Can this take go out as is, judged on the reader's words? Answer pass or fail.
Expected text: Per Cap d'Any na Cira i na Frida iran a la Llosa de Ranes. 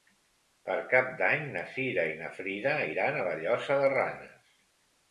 pass